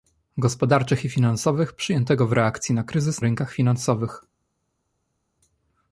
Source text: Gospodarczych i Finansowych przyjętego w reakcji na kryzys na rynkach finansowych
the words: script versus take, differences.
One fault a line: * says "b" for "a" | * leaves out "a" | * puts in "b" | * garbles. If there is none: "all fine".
* leaves out "na"